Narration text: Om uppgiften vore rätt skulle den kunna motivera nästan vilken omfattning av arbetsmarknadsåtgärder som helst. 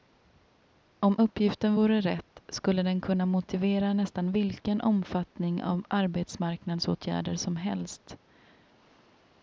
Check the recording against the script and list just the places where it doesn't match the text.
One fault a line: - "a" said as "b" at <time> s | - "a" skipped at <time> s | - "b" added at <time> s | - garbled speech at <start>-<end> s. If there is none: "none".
none